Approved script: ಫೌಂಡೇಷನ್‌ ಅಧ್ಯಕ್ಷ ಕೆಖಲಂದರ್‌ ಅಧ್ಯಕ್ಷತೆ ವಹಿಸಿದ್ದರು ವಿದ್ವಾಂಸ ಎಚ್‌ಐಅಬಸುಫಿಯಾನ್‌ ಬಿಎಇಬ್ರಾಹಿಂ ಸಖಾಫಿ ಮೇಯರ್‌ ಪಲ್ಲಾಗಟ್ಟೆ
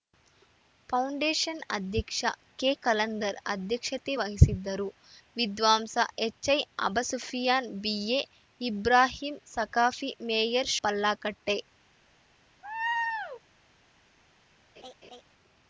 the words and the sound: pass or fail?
fail